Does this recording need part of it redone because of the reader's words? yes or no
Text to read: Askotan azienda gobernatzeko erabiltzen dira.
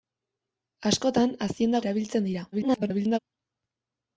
yes